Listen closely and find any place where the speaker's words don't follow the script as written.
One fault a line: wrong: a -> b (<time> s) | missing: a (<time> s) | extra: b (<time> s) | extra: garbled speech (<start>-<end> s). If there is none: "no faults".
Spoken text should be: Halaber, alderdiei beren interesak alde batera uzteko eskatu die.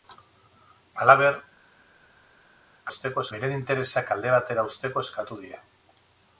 wrong: alderdiei -> uzteko (2.9 s)